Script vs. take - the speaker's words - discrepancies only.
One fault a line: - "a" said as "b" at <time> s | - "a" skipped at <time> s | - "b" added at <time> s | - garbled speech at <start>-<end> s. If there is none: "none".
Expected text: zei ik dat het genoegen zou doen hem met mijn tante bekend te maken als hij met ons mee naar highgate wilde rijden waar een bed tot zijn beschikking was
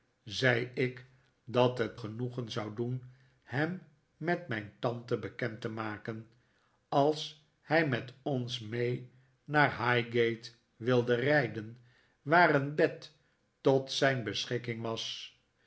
none